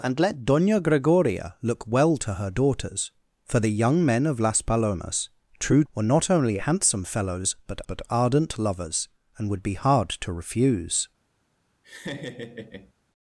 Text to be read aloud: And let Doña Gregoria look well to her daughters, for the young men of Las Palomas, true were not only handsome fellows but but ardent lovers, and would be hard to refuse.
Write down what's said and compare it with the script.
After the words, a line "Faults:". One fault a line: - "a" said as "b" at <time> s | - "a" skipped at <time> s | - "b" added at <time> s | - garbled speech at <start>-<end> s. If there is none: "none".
And let Doña Gregoria look well to her daughters, for the young men of Las Palomas, true were not only handsome fellows but but ardent lovers, and would be hard to refuse.
Faults:
none